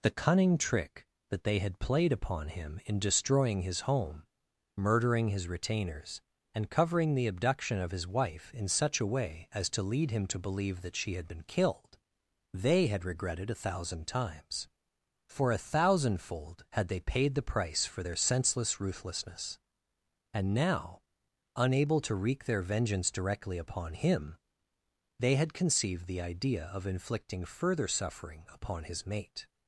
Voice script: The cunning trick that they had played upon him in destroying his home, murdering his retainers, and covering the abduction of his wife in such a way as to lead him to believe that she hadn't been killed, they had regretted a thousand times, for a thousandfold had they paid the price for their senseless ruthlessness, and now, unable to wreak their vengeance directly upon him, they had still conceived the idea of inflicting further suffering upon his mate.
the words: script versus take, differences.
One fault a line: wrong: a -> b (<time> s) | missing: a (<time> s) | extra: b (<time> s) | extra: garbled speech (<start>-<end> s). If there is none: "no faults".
wrong: hadn't -> had (11.1 s)
missing: still (25.5 s)